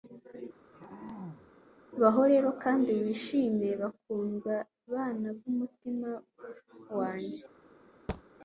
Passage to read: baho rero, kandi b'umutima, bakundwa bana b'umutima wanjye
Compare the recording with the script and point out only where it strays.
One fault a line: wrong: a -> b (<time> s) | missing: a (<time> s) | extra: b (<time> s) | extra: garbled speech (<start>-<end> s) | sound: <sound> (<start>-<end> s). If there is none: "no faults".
sound: throat clearing (0.7-1.5 s)
wrong: b'umutima -> wishime (3.0 s)
sound: thud (8.1-8.2 s)